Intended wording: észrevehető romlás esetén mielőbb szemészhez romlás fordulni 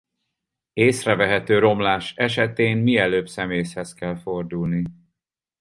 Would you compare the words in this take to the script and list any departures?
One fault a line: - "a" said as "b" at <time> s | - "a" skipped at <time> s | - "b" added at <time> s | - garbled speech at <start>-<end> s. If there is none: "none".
- "romlás" said as "kell" at 3.9 s